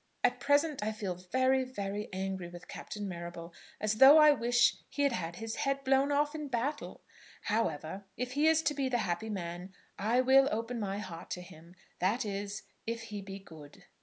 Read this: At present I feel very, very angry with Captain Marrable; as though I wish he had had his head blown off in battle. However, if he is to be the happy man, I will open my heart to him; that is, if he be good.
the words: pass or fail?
pass